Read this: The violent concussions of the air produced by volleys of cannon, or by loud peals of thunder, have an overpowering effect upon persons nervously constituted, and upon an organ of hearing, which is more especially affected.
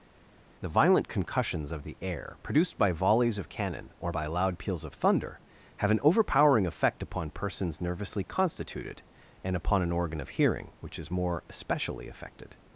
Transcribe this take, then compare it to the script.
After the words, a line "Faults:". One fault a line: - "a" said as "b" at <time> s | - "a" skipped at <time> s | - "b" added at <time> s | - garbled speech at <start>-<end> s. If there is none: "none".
The violent concussions of the air produced by volleys of cannon, or by loud peals of thunder, have an overpowering effect upon persons nervously constituted, and upon an organ of hearing, which is more especially affected.
Faults:
none